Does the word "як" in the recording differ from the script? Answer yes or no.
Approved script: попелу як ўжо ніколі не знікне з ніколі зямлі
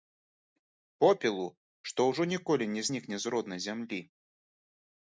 yes